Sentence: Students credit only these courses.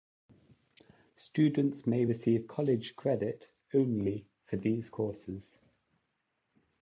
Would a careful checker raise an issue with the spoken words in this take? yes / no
yes